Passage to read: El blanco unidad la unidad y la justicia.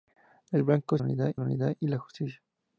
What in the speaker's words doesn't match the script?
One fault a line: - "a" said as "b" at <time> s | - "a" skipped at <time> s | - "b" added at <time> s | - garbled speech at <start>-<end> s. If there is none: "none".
none